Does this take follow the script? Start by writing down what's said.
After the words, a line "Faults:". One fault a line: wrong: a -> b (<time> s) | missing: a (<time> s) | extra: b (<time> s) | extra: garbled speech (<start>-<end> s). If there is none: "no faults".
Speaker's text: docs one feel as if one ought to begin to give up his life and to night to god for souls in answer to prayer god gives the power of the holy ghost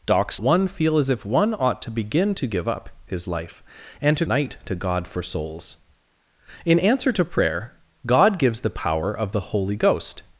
docs one feel as if one ought to begin to give up his life and to night to god for souls in answer to prayer god gives the power of the holy ghost
Faults:
no faults